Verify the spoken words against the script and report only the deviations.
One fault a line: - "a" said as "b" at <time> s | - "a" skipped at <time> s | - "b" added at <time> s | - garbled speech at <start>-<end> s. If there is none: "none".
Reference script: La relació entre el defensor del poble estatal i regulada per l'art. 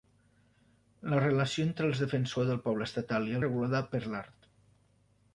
none